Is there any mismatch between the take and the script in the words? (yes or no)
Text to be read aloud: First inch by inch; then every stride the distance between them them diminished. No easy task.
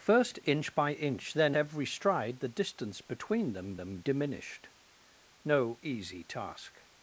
no